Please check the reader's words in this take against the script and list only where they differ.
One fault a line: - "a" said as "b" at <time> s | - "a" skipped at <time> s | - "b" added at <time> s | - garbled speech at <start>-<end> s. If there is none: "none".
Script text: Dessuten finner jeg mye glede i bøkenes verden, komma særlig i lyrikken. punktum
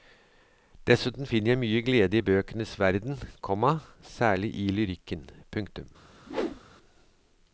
none